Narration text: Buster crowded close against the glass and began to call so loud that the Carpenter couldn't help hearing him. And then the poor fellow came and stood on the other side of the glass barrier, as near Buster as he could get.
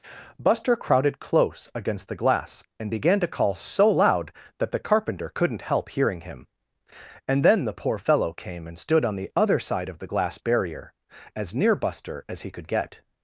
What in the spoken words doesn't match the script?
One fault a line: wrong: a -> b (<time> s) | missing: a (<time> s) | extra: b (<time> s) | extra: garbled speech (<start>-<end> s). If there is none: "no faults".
no faults